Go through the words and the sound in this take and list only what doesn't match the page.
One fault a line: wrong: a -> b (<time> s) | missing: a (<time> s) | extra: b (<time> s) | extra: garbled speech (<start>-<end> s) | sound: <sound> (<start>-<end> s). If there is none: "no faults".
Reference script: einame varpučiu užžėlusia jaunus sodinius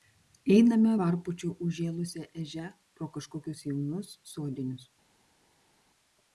extra: ežia pro kažkokius (2.4 s)